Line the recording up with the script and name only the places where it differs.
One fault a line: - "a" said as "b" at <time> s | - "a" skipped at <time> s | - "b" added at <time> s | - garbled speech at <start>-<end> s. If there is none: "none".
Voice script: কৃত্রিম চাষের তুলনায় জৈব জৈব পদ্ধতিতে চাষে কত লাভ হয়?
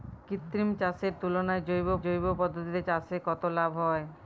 none